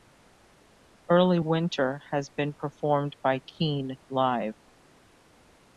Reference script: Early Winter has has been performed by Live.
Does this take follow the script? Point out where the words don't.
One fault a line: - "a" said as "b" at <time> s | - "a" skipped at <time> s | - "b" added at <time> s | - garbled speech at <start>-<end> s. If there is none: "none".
- "has" skipped at 2.3 s
- "Keane" added at 3.5 s